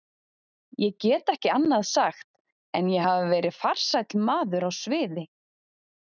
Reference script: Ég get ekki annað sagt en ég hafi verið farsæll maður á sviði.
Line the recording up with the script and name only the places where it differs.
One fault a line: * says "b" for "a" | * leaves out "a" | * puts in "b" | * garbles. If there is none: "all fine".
all fine